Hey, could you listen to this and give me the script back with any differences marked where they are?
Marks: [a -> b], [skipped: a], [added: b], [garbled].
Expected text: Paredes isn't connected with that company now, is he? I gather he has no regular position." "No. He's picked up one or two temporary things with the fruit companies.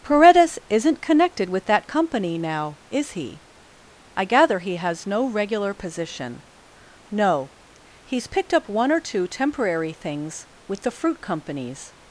Paredes isn't connected with that company now, is he? I gather he has no regular position." "No. He's picked up one or two temporary things with the fruit companies.